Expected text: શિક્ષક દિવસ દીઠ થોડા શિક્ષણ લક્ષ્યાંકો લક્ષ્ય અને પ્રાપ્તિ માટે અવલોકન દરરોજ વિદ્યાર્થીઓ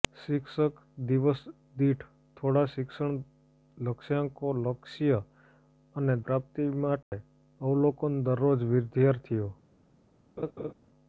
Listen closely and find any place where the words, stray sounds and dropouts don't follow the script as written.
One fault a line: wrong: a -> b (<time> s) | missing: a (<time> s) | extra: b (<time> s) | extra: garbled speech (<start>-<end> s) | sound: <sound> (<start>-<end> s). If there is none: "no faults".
sound: dropout (7.0-7.1 s)
sound: laugh (10.4-10.7 s)